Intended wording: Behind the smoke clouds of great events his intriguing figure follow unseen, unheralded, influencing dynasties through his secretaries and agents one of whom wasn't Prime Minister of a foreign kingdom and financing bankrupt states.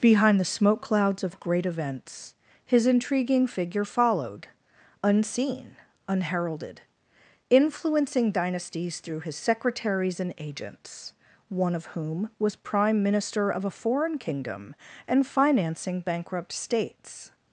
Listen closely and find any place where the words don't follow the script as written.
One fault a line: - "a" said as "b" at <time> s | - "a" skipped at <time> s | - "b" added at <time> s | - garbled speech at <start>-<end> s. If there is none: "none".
- "follow" said as "followed" at 3.9 s
- "wasn't" said as "was" at 12.4 s